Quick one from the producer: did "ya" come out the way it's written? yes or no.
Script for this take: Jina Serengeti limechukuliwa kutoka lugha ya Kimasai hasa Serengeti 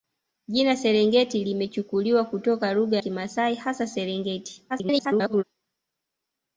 no